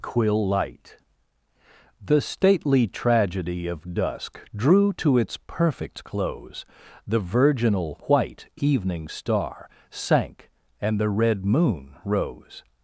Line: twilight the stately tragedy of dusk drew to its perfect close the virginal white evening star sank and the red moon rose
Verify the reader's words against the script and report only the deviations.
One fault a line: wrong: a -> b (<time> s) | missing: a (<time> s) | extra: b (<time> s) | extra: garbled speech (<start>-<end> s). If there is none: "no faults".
wrong: twilight -> quill light (0.0 s)